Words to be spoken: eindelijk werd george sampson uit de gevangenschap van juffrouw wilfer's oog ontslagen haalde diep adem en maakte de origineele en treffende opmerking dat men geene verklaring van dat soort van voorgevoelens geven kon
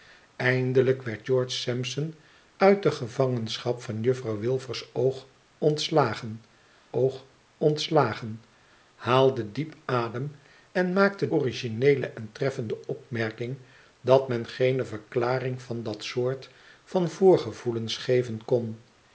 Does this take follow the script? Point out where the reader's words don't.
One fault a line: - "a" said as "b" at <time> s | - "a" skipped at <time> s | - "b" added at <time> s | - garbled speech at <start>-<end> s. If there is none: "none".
- "oog ontslagen" added at 6.9 s
- "de" skipped at 11.3 s